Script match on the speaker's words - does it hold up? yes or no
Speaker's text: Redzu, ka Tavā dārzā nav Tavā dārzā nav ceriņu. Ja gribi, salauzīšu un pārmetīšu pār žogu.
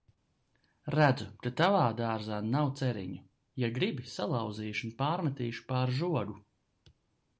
no